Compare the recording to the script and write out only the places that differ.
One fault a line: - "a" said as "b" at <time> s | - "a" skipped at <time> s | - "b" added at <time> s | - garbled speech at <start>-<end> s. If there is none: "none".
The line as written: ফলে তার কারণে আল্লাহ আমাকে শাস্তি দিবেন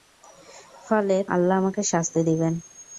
- "তার কারণে" skipped at 1.2 s